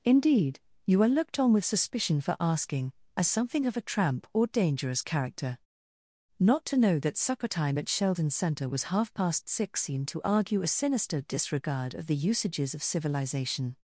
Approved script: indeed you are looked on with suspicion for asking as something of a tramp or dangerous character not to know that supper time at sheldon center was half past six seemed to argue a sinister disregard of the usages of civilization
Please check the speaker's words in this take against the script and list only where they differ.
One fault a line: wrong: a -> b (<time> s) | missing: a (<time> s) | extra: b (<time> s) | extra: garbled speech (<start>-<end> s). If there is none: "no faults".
no faults